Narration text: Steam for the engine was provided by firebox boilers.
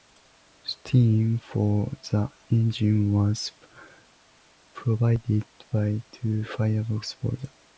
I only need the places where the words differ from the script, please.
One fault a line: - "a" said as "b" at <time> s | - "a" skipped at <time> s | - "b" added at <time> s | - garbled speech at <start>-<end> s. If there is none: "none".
- "two" added at 6.1 s